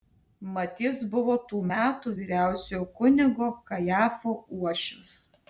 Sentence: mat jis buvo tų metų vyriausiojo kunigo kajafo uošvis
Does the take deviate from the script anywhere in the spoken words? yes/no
no